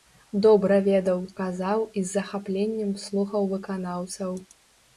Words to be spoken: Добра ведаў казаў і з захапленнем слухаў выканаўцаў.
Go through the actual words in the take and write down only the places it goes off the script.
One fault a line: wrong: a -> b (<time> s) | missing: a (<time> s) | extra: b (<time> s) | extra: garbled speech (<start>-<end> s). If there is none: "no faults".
no faults